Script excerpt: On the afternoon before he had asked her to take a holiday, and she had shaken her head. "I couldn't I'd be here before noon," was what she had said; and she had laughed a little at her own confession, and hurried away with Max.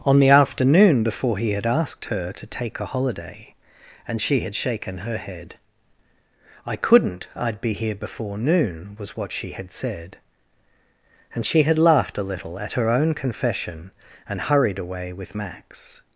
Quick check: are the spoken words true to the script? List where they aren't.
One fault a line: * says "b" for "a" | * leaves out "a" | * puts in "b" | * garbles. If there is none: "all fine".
all fine